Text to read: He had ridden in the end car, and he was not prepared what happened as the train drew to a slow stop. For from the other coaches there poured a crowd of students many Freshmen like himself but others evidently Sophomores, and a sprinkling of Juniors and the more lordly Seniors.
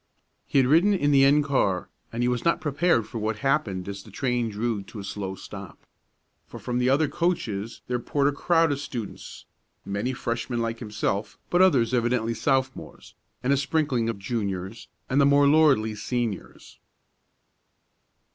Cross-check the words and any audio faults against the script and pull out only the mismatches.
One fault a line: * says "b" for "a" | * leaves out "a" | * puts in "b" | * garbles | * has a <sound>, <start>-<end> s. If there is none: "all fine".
* puts in "for"